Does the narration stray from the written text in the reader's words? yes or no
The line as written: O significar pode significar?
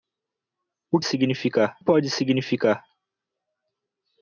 no